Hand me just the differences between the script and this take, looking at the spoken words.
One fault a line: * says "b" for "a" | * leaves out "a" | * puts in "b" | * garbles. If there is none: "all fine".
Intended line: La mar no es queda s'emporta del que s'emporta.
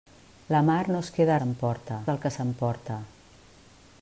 all fine